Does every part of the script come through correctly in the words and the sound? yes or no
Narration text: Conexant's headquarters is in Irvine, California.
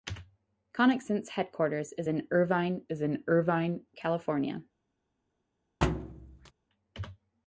no